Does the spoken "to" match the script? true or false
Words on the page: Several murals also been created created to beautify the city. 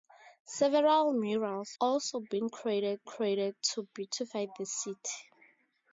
true